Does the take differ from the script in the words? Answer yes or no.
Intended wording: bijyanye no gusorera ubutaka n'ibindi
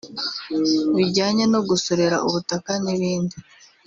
no